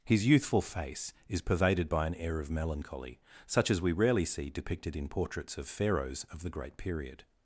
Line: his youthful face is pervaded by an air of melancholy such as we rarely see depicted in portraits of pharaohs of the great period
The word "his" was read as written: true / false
true